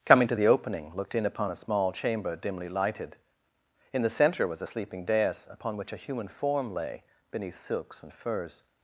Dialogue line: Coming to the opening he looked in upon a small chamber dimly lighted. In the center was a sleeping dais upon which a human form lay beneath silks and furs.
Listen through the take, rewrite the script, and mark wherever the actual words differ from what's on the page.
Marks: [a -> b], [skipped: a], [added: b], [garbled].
Coming to the opening [skipped: he] looked in upon a small chamber dimly lighted. In the center was a sleeping dais upon which a human form lay beneath silks and furs.